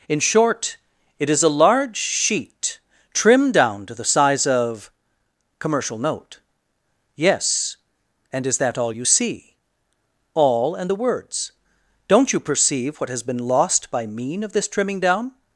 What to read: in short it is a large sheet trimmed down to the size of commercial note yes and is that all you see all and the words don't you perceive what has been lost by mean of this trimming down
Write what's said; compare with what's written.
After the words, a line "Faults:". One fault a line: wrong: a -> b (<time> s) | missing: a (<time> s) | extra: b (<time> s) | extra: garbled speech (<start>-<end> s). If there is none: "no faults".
in short it is a large sheet trimmed down to the size of commercial note yes and is that all you see all and the words don't you perceive what has been lost by mean of this trimming down
Faults:
no faults